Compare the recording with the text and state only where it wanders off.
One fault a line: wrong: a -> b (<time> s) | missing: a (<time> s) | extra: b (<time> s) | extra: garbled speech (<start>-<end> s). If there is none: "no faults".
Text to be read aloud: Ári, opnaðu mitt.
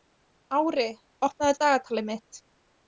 extra: dagatalið (1.6 s)